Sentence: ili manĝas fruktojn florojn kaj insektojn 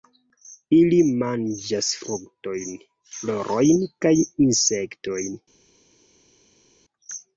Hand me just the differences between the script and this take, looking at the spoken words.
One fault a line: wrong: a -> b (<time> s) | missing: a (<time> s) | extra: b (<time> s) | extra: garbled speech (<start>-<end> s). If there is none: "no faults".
no faults